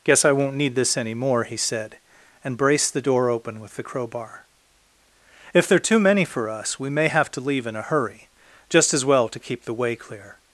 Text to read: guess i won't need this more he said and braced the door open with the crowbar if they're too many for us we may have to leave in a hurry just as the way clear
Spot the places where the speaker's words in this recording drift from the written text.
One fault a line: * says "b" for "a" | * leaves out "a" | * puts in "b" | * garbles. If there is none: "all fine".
* puts in "any"
* puts in "well to keep"